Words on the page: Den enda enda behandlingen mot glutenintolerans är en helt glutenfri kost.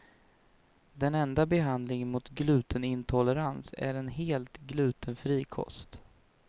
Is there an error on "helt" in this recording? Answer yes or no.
no